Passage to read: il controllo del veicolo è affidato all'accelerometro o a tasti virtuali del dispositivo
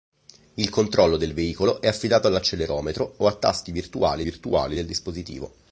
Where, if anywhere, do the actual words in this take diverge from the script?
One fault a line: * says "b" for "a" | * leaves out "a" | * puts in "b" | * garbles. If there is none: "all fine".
* puts in "virtuali"